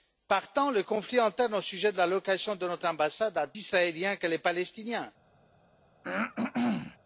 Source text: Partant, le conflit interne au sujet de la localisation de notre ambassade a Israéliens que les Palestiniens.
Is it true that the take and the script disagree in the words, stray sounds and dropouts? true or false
true